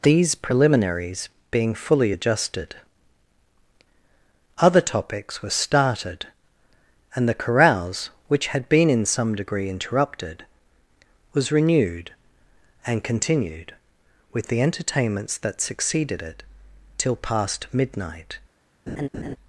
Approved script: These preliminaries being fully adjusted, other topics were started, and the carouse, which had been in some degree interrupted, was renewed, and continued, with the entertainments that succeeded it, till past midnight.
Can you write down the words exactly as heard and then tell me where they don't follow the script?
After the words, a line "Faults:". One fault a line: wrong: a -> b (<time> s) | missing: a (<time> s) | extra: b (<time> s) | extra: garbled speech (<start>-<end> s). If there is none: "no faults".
These preliminaries being fully adjusted, other topics were started, and the carouse, which had been in some degree interrupted, was renewed, and continued, with the entertainments that succeeded it, till past midnight.
Faults:
no faults